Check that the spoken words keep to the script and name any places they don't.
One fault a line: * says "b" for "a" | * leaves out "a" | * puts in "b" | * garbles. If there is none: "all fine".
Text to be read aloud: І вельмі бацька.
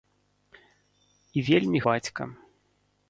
all fine